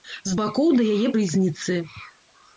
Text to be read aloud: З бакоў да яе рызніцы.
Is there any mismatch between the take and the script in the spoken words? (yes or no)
no